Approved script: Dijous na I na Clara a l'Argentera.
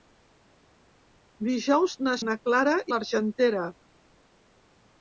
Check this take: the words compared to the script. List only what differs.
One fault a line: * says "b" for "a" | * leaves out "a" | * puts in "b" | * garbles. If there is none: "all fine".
all fine